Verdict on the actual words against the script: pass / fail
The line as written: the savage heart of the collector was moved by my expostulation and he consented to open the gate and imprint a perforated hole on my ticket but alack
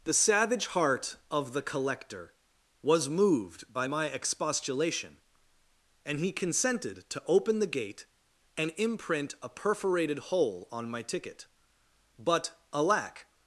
pass